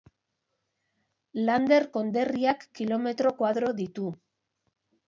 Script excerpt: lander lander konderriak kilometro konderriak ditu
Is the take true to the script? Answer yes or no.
no